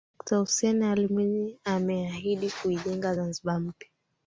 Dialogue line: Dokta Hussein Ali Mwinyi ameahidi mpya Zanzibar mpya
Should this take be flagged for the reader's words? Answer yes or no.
yes